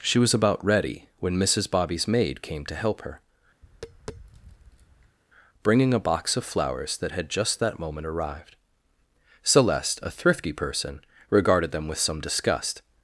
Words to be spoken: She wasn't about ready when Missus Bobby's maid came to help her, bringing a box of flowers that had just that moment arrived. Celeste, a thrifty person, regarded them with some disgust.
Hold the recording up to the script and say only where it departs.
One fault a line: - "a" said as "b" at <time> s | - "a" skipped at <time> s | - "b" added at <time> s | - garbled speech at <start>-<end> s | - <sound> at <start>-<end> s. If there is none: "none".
- "wasn't" said as "was" at 0.2 s
- tap at 3.6-5.2 s